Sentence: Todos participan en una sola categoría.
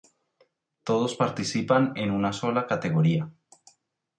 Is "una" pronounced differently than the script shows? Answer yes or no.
no